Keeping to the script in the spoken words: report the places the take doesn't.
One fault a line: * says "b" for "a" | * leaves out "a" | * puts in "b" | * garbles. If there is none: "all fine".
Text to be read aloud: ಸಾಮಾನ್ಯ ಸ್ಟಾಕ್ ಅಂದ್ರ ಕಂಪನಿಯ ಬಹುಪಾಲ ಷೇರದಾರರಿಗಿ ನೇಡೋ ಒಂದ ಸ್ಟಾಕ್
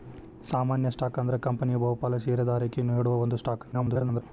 * garbles